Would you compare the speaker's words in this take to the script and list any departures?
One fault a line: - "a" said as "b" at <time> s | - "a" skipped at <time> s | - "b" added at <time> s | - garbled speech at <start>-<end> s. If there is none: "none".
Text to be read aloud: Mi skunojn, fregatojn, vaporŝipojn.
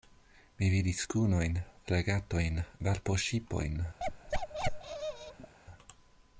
- "vidis" added at 0.8 s